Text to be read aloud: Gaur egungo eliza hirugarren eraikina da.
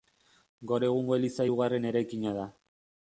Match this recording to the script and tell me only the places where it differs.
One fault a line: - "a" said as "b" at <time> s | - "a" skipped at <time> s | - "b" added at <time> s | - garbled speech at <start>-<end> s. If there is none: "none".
none